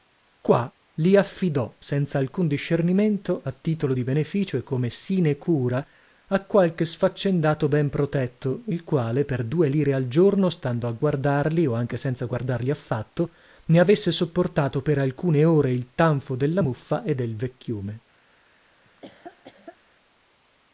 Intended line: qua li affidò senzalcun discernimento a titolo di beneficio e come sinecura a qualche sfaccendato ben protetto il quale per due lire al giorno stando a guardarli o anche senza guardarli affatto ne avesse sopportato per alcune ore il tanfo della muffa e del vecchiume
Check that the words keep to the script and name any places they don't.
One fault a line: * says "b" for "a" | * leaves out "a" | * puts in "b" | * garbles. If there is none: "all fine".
all fine